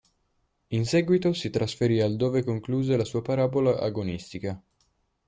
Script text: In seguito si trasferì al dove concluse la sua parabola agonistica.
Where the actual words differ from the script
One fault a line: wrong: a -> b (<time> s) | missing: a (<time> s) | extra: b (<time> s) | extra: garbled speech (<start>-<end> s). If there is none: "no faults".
no faults